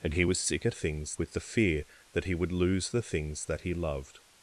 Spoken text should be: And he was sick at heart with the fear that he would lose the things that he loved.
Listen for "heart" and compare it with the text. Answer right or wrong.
wrong